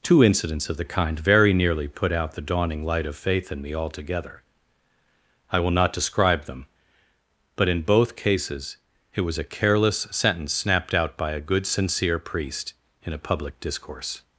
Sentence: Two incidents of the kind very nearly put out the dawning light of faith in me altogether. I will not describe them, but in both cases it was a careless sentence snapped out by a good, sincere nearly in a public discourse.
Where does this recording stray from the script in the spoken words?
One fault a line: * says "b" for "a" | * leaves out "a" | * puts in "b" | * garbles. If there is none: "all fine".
* says "priest" for "nearly"